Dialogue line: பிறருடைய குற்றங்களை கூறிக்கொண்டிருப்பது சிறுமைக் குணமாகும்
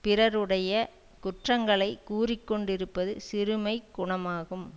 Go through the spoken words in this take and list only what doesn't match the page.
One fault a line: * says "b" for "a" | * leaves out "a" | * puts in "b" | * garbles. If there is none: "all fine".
all fine